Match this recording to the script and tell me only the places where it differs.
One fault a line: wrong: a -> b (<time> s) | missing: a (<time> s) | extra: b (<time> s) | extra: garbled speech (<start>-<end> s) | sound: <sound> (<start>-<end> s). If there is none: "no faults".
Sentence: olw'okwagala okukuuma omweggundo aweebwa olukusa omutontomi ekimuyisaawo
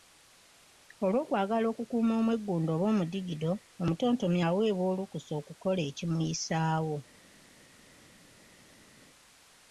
extra: oba omudigido omutontomi (2.7 s)
wrong: omutontomi -> okukola (5.4 s)